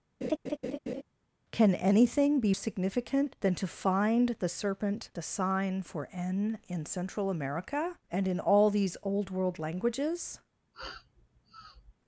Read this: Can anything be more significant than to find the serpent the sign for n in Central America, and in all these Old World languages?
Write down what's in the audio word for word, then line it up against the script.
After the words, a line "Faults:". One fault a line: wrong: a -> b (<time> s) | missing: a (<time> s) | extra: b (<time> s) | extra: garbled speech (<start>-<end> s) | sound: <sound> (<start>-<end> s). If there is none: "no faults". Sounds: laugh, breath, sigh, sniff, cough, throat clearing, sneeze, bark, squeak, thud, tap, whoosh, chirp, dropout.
Can anything be significant than to find the serpent the sign for n in Central America, and in all these Old World languages?
Faults:
sound: laugh (0.2-1.0 s)
missing: more (2.5 s)
sound: sniff (10.7-11.9 s)